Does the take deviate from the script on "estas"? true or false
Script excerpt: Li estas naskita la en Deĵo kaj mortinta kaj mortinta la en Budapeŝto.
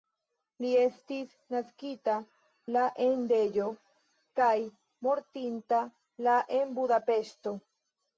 true